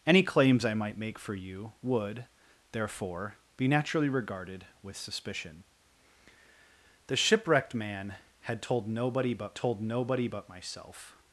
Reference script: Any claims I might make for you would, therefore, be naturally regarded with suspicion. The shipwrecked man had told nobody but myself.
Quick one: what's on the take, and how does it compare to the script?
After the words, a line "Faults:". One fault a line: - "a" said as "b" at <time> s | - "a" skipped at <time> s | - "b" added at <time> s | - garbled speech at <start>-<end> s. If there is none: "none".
Any claims I might make for you would, therefore, be naturally regarded with suspicion. The shipwrecked man had told nobody but told nobody but myself.
Faults:
- "told nobody but" added at 9.5 s